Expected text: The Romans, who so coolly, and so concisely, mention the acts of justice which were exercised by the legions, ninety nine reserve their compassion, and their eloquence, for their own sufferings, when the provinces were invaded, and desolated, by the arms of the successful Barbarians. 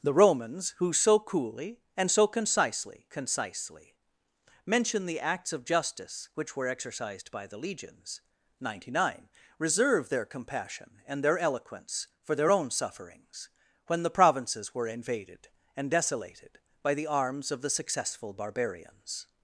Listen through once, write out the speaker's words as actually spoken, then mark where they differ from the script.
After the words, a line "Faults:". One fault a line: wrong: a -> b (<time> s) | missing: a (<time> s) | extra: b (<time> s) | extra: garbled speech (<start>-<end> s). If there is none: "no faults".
The Romans, who so coolly, and so concisely concisely, mention the acts of justice which were exercised by the legions, ninety nine reserve their compassion, and their eloquence, for their own sufferings, when the provinces were invaded, and desolated, by the arms of the successful Barbarians.
Faults:
extra: concisely (3.1 s)